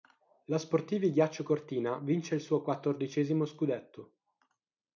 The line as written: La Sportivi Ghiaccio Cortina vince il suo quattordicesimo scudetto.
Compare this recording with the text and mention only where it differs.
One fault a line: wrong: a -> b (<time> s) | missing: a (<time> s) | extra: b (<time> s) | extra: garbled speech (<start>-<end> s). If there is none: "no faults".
no faults